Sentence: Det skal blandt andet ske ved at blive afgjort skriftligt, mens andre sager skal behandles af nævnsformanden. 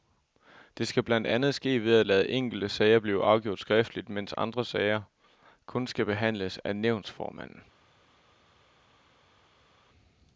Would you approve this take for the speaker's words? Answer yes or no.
no